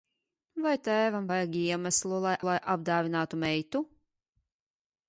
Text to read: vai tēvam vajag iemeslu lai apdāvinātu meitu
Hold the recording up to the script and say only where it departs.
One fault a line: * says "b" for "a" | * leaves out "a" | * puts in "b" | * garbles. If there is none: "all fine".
* puts in "lai"